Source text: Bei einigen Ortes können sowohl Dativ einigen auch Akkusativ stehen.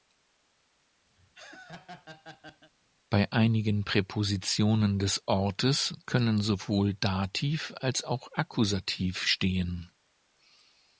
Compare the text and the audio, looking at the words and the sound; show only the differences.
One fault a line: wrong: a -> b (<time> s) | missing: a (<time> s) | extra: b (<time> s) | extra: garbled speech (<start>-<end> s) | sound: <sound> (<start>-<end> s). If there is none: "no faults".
sound: laugh (1.2-2.7 s)
extra: Präpositionen des (3.8 s)
wrong: einigen -> als (7.8 s)